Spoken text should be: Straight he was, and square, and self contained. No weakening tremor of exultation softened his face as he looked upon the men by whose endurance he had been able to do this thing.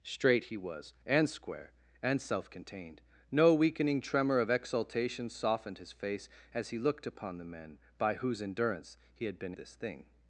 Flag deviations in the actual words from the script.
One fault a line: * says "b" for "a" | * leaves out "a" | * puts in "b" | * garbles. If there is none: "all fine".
* leaves out "able to do"